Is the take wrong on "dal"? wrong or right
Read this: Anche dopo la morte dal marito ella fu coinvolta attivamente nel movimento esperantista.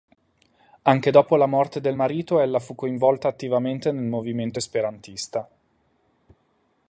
wrong